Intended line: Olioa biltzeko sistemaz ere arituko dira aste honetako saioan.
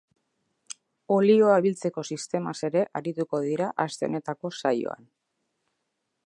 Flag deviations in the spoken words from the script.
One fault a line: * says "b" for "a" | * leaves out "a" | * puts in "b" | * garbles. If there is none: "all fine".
all fine